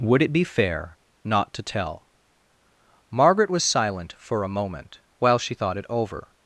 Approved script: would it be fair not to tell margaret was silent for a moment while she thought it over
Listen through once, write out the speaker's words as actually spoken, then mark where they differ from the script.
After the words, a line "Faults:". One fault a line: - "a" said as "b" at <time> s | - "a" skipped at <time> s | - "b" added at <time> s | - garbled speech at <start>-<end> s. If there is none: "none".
would it be fair not to tell margaret was silent for a moment while she thought it over
Faults:
none